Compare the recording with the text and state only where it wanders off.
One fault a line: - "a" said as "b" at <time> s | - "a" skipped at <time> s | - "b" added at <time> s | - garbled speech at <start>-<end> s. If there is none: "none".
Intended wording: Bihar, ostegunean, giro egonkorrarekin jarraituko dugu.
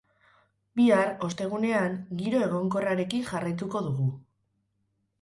none